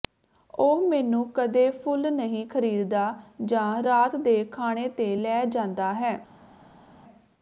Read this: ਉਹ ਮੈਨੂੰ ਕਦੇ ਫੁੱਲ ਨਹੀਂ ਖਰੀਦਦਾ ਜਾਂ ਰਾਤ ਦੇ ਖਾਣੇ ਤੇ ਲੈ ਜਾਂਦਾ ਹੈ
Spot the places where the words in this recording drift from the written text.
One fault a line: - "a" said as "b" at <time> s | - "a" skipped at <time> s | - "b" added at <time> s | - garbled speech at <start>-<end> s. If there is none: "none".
none